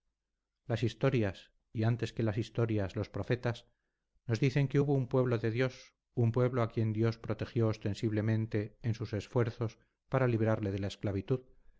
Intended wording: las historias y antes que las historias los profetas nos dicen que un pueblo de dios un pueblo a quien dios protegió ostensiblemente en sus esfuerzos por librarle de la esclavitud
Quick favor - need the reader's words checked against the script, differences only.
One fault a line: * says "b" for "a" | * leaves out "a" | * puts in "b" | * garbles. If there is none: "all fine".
* puts in "hubo"
* says "para" for "por"